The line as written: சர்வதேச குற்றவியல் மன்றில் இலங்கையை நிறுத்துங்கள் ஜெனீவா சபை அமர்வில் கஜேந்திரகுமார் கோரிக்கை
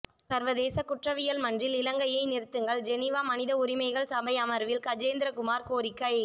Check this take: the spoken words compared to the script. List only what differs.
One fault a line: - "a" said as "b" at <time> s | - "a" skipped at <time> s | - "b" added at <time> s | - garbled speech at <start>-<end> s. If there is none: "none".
- "மனித உரிமைகள்" added at 3.2 s